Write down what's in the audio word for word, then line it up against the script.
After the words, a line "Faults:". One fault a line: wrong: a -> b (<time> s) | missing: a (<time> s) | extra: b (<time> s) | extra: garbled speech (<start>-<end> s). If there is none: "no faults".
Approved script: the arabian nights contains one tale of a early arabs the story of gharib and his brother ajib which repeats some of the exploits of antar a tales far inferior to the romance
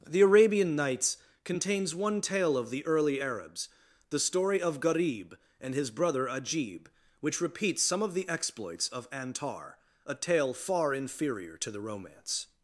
the arabian nights contains one tale of the early arabs the story of gharib and his brother ajib which repeats some of the exploits of antar a tale far inferior to the romance
Faults:
wrong: a -> the (2.7 s)
wrong: tales -> tale (10.1 s)